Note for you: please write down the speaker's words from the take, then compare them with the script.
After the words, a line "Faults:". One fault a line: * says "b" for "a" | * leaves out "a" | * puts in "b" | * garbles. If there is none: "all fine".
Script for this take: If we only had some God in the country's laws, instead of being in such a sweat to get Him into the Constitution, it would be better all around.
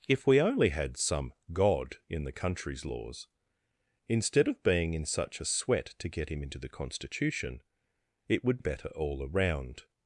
If we only had some God in the country's laws, instead of being in such a sweat to get Him into the Constitution, it would better all around.
Faults:
* leaves out "be"